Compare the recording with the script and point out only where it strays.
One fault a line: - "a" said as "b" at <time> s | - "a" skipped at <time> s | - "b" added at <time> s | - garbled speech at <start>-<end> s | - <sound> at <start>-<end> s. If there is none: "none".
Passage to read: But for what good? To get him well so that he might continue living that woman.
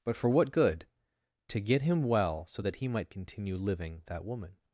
none